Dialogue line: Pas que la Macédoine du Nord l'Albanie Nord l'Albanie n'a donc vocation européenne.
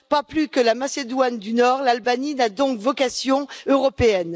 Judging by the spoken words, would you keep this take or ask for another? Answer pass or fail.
fail